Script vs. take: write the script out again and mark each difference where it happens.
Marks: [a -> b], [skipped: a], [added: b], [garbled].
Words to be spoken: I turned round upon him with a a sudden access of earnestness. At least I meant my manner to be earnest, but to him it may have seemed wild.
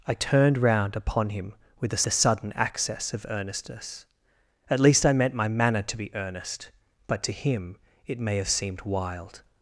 I turned round upon him with a a sudden access of earnestness. At least I meant my manner to be earnest, but to him it may have seemed wild.